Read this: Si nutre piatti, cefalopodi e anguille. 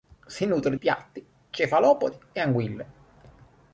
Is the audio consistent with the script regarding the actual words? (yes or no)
yes